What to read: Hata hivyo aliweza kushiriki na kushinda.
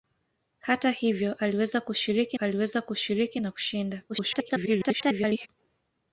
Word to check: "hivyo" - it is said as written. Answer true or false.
true